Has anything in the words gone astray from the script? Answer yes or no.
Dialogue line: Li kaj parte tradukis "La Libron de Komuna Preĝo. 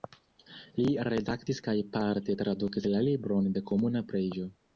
yes